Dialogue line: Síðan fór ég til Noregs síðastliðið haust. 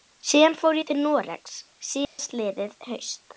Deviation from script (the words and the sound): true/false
true